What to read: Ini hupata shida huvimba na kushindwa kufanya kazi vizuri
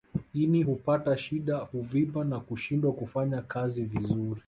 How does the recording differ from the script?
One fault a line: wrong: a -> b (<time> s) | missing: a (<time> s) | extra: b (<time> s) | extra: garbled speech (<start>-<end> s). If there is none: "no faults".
no faults